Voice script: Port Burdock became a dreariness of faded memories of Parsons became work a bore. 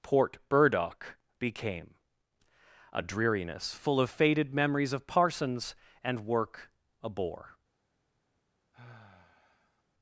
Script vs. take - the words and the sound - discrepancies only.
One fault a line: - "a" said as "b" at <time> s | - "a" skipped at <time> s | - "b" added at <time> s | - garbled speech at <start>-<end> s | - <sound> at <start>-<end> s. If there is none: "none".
- "full" added at 3.7 s
- "became" said as "and" at 6.0 s
- sigh at 8.7-9.8 s